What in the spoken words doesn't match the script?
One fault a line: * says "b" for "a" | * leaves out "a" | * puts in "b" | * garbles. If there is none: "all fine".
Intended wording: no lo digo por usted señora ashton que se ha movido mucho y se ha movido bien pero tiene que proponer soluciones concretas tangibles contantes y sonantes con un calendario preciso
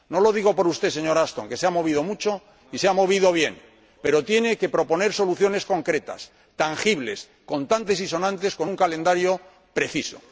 all fine